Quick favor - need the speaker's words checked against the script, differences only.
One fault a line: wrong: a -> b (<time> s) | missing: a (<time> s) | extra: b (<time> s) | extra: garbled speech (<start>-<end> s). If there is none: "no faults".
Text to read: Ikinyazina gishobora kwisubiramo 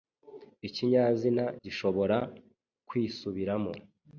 no faults